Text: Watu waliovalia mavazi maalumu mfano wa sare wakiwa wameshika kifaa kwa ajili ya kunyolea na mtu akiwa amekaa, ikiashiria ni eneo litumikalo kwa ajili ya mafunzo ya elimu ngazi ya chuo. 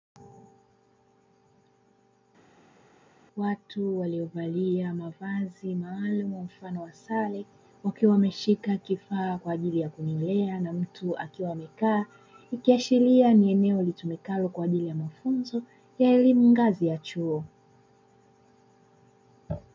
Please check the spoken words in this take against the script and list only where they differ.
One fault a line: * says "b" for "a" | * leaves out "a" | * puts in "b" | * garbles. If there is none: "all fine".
all fine